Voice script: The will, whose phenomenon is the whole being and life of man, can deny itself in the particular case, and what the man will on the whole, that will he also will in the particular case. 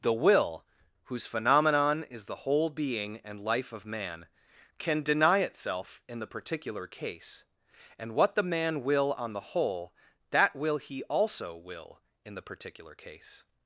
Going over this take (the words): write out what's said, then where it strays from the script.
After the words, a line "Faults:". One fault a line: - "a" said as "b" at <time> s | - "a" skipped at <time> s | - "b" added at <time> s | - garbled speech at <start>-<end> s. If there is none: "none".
The will, whose phenomenon is the whole being and life of man, can deny itself in the particular case, and what the man will on the whole, that will he also will in the particular case.
Faults:
none